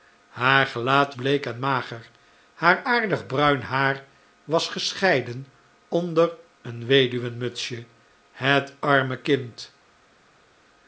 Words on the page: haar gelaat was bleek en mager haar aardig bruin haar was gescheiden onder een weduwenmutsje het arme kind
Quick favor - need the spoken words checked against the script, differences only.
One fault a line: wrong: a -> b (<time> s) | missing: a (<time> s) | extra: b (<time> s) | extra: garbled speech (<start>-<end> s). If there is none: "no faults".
missing: was (1.1 s)